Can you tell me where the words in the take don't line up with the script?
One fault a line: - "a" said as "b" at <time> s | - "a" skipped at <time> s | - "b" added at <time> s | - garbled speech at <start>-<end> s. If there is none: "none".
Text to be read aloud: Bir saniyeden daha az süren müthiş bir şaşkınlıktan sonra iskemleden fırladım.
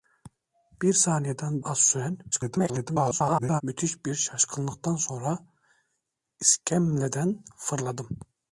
- "daha" skipped at 1.6 s
- garbled speech at 2.3-3.6 s